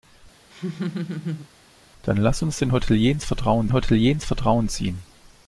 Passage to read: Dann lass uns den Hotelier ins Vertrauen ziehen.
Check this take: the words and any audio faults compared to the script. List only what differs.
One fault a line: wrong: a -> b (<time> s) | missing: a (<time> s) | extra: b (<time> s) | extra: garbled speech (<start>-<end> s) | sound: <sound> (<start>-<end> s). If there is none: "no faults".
sound: laugh (0.5-1.5 s)
extra: Hotelier ins Vertrauen (3.7 s)